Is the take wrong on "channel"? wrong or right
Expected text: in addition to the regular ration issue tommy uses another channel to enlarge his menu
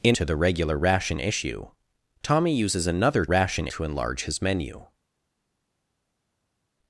wrong